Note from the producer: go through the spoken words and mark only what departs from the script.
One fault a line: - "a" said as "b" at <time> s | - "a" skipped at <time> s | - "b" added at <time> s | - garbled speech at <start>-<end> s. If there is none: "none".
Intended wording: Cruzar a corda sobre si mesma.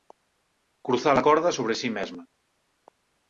none